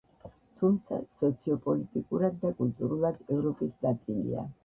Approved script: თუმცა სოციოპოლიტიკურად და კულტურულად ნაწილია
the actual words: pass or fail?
fail